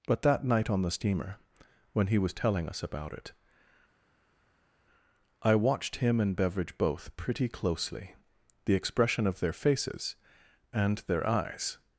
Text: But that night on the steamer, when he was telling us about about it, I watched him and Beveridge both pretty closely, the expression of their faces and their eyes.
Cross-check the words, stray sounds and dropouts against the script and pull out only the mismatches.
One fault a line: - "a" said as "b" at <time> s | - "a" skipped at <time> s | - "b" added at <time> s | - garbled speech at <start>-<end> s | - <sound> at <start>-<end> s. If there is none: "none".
- "about" skipped at 3.1 s